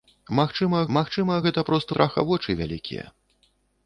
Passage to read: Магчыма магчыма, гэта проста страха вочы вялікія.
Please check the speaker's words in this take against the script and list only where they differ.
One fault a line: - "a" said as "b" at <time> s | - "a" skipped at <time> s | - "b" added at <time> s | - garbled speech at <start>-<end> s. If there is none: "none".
none